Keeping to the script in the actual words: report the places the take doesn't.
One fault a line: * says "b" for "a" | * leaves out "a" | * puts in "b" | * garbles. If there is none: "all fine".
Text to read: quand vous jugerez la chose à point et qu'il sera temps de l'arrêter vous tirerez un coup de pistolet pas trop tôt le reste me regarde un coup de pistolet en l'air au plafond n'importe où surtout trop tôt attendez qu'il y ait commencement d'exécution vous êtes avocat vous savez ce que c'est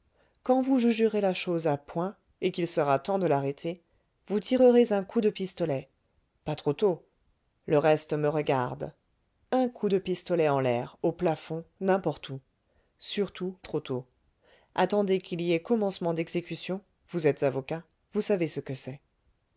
all fine